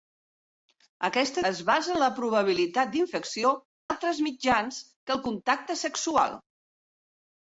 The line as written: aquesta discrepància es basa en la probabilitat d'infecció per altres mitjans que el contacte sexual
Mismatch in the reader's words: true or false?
true